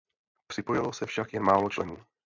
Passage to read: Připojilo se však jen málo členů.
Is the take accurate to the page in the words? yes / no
yes